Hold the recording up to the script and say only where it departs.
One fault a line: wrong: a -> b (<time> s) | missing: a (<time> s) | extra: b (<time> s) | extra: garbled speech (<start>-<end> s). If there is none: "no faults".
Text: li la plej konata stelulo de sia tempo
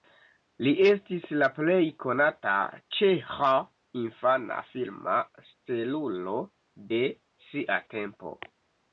extra: estis (0.9 s)
extra: ĉeĥa infana filma (3.0 s)